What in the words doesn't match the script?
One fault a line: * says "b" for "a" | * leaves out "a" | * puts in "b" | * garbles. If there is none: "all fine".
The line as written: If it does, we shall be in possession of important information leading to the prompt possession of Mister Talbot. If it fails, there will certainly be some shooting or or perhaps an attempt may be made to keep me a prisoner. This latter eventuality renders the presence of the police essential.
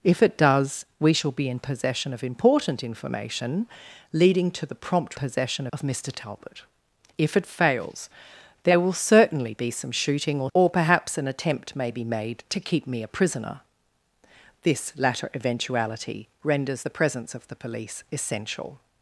all fine